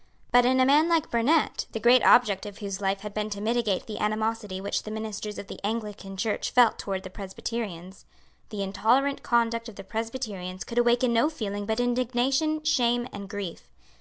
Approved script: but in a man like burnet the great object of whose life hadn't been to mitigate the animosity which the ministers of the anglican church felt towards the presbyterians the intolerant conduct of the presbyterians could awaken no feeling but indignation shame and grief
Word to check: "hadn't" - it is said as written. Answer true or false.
false